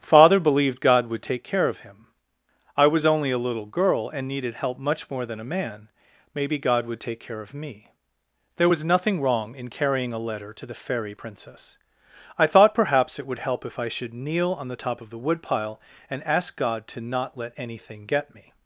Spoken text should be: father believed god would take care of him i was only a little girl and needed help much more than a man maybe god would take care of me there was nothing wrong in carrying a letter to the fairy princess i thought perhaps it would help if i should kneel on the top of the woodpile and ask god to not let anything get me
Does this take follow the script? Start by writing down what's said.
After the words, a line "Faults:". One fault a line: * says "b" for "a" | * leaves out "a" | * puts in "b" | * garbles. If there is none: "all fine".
father believed god would take care of him i was only a little girl and needed help much more than a man maybe god would take care of me there was nothing wrong in carrying a letter to the fairy princess i thought perhaps it would help if i should kneel on the top of the woodpile and ask god to not let anything get me
Faults:
all fine